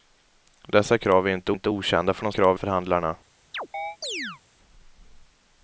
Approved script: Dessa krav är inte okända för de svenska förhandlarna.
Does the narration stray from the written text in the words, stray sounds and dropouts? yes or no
yes